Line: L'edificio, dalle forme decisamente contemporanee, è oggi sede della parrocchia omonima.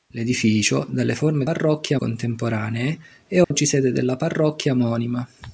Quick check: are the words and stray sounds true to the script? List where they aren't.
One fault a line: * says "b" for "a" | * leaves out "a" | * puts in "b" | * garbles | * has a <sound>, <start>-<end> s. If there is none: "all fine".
* says "parrocchia" for "decisamente"
* has a dropout, 3.4-3.5 s